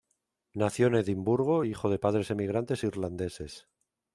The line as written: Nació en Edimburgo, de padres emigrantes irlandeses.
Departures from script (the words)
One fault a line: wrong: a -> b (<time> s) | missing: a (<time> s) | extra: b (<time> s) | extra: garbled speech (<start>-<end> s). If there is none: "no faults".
extra: hijo (1.6 s)